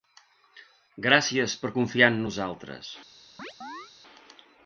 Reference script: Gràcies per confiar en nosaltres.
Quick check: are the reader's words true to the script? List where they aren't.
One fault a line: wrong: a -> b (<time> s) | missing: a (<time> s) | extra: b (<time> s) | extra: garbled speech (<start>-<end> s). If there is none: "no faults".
no faults